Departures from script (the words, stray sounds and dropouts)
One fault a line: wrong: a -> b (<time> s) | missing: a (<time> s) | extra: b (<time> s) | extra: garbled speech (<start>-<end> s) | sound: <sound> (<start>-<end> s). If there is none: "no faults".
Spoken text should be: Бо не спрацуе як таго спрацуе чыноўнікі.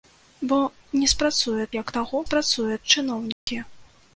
sound: dropout (3.3-3.5 s)